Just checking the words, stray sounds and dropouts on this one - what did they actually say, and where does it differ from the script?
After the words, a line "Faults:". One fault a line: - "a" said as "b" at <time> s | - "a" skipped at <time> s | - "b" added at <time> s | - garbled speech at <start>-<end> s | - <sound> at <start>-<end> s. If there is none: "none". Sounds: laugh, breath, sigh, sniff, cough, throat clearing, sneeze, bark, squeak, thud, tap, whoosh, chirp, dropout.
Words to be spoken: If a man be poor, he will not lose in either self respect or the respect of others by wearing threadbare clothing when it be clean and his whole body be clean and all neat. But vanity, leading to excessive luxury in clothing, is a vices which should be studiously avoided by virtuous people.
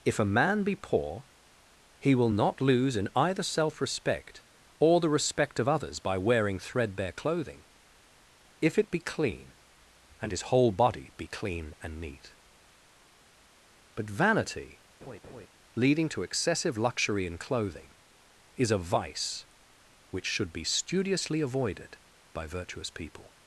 If a man be poor, he will not lose in either self respect or the respect of others by wearing threadbare clothing if it be clean and his whole body be clean and neat. But vanity, leading to excessive luxury in clothing, is a vice which should be studiously avoided by virtuous people.
Faults:
- "when" said as "if" at 8.6 s
- "all" skipped at 12.0 s
- laugh at 15.0-15.5 s
- "vices" said as "vice" at 18.8 s